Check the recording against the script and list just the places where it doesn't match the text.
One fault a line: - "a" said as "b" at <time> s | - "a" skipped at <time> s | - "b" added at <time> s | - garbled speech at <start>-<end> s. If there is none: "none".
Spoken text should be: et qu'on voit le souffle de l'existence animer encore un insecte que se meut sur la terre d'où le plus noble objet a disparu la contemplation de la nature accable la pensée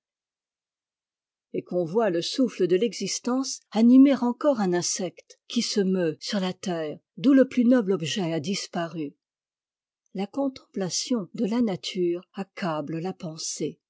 - "que" said as "qui" at 5.5 s